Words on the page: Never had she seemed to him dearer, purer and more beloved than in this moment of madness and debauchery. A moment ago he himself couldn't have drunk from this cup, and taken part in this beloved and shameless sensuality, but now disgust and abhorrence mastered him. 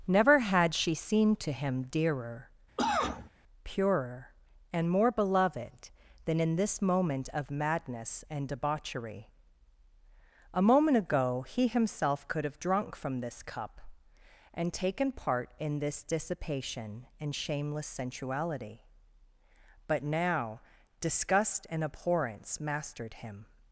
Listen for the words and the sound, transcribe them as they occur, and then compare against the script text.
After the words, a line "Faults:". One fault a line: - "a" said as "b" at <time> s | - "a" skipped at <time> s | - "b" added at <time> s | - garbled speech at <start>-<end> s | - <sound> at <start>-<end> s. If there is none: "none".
Never had she seemed to him dearer, purer and more beloved than in this moment of madness and debauchery. A moment ago he himself could have drunk from this cup, and taken part in this dissipation and shameless sensuality, but now disgust and abhorrence mastered him.
Faults:
- cough at 2.8-3.3 s
- "couldn't" said as "could" at 12.3 s
- "beloved" said as "dissipation" at 16.0 s